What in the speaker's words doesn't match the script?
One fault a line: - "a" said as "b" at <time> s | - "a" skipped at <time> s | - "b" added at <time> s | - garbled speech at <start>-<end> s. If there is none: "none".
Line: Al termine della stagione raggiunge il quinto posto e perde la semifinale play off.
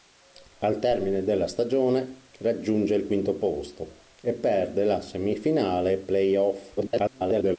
- garbled speech at 6.8-7.6 s